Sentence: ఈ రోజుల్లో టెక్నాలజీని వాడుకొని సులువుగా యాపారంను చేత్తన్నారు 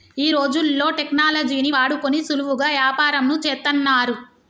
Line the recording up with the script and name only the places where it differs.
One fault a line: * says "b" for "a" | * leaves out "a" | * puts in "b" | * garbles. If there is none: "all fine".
all fine